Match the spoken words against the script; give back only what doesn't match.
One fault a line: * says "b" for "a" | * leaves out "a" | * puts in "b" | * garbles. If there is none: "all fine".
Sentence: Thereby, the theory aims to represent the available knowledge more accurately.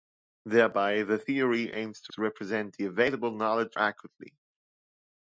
* puts in "to"
* leaves out "more"